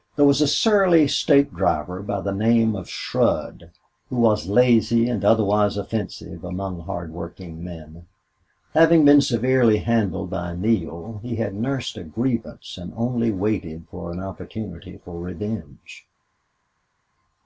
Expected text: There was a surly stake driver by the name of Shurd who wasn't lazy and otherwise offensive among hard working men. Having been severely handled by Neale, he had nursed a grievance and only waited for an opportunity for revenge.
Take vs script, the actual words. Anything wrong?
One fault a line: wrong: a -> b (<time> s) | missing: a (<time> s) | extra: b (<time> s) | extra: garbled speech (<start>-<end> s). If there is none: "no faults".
wrong: wasn't -> was (4.2 s)